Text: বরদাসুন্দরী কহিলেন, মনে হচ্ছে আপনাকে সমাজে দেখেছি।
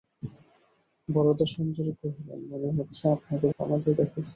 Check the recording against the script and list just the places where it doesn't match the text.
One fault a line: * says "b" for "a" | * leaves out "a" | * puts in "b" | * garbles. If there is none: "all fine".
all fine